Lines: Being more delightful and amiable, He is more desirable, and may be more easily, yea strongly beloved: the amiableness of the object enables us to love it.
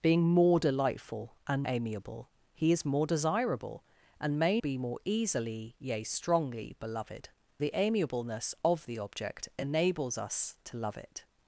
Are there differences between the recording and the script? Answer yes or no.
no